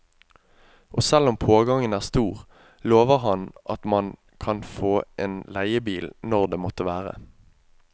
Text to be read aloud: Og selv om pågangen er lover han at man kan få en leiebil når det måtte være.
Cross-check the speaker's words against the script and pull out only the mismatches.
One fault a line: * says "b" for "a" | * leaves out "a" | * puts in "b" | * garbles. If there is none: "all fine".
* puts in "stor"